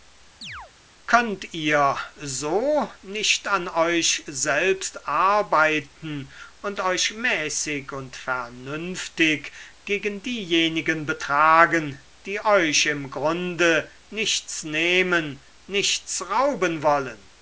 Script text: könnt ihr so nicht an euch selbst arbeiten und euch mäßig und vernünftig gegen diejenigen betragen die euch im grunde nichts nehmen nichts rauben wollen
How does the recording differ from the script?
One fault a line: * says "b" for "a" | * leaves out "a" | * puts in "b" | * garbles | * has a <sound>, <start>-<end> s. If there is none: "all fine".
* has a chirp, 0.4-0.7 s